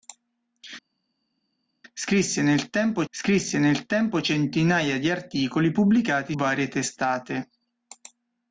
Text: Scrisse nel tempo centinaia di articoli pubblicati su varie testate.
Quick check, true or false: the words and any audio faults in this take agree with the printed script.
false